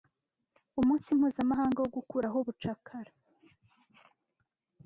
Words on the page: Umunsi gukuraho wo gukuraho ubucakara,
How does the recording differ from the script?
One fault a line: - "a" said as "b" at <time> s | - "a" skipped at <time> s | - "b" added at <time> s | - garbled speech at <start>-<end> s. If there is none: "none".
- "gukuraho" said as "mpuzamahanga" at 1.2 s